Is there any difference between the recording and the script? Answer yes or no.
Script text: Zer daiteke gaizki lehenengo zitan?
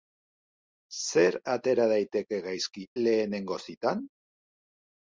yes